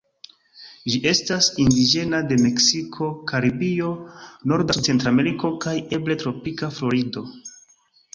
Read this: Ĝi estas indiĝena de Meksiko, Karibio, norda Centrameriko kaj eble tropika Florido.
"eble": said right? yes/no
yes